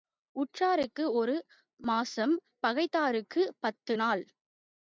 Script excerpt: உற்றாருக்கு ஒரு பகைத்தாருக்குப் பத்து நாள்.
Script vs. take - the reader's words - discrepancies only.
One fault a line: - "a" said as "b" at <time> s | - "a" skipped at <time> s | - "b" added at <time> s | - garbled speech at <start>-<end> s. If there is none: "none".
- "மாசம்" added at 1.8 s